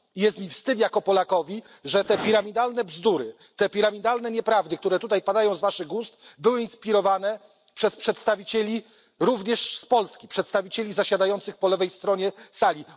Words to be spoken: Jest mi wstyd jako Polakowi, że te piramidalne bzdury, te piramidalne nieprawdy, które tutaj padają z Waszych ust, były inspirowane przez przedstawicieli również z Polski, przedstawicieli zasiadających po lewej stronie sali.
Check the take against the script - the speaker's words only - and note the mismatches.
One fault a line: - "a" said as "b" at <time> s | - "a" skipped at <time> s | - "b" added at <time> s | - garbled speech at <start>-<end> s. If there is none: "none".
none